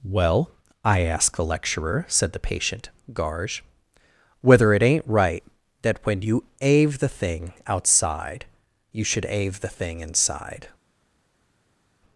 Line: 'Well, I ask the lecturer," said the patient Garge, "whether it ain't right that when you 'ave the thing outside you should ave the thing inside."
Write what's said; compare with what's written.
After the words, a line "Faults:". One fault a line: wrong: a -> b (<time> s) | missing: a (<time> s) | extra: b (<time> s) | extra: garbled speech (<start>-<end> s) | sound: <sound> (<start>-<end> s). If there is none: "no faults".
'Well, I ask the lecturer," said the patient Garge, "whether it ain't right that when you 'ave the thing outside you should ave the thing inside."
Faults:
no faults